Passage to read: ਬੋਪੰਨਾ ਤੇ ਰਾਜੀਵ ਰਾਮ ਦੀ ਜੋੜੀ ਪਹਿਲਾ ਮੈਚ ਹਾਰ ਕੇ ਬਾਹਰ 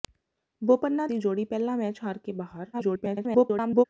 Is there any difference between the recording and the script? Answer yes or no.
yes